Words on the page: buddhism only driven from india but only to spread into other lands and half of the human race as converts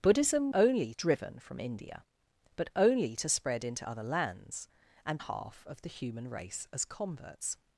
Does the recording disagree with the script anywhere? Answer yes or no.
no